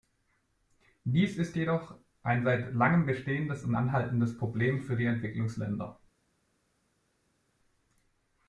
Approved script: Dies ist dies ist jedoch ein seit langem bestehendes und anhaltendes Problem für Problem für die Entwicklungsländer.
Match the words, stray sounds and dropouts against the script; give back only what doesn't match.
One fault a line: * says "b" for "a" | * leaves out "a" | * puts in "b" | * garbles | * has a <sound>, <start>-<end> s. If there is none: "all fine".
* leaves out "dies ist"
* leaves out "Problem für"